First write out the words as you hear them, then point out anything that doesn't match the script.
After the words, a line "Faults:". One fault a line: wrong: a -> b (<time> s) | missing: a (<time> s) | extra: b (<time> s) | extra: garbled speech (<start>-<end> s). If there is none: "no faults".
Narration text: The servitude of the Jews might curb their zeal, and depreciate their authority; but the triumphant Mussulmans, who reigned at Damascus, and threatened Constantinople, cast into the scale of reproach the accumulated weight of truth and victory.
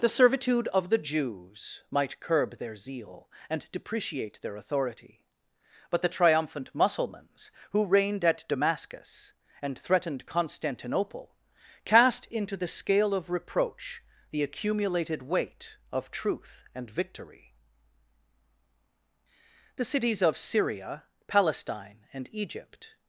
The servitude of the Jews might curb their zeal, and depreciate their authority; but the triumphant Mussulmans, who reigned at Damascus, and threatened Constantinople, cast into the scale of reproach the accumulated weight of truth and victory. The cities of Syria, Palestine, and Egypt
Faults:
extra: The cities of Syria Palestine and Egypt (19.8 s)